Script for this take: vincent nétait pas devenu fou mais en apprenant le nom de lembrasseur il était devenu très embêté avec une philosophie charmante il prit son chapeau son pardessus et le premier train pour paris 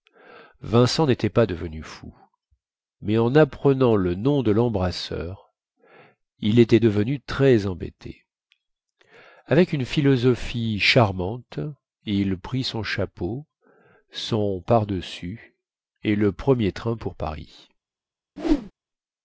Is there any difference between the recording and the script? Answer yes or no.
no